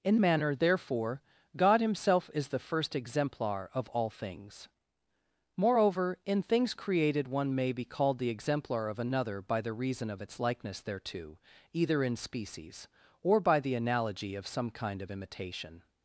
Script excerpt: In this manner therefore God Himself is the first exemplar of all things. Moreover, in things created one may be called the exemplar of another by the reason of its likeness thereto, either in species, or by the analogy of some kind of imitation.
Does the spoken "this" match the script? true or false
false